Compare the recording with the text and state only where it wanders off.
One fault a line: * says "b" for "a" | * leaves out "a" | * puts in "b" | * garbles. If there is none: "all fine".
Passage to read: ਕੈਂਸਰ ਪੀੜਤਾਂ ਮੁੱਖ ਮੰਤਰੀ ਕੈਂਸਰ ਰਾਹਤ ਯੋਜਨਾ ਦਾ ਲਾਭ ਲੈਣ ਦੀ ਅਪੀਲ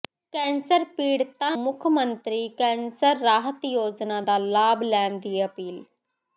all fine